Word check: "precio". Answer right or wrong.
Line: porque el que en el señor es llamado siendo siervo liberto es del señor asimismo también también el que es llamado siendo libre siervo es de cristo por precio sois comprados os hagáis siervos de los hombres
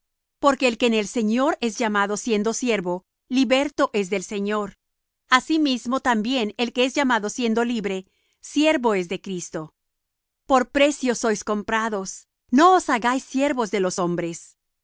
right